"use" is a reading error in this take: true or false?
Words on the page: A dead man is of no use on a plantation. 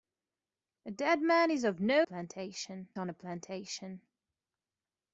true